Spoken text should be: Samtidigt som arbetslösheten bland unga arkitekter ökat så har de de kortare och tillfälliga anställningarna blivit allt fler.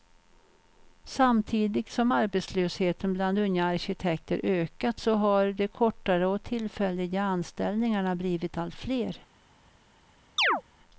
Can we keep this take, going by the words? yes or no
no